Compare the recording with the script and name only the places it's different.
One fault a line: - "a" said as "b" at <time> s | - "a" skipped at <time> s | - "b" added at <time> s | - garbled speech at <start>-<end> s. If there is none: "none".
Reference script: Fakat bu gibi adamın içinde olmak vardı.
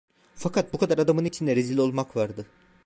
- "gibi" said as "kadar" at 0.8 s
- "rezil" added at 1.6 s